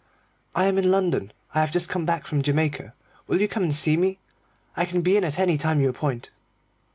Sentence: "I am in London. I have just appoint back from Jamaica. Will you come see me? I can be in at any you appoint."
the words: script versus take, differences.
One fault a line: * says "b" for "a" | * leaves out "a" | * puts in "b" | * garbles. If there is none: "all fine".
* says "come" for "appoint"
* puts in "and"
* puts in "time"